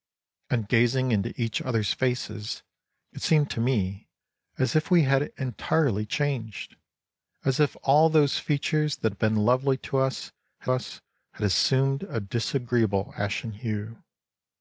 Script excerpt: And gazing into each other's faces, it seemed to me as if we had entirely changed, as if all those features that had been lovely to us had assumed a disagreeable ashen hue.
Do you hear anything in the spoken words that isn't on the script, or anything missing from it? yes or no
yes